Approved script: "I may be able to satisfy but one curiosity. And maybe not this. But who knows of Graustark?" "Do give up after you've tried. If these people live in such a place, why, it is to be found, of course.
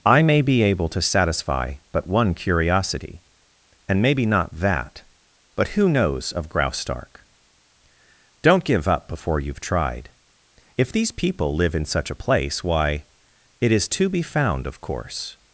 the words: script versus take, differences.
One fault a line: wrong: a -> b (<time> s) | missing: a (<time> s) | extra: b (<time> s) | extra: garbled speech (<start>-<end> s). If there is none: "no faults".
wrong: this -> that (4.5 s)
wrong: Do -> Don't (8.4 s)
wrong: after -> before (9.1 s)